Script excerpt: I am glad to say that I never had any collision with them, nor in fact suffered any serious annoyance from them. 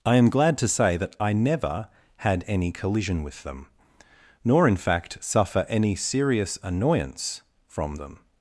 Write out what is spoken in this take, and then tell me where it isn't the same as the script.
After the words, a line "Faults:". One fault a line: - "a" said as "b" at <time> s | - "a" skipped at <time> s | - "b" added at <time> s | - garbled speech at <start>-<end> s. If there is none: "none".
I am glad to say that I never had any collision with them, nor in fact suffer any serious annoyance from them.
Faults:
- "suffered" said as "suffer" at 5.2 s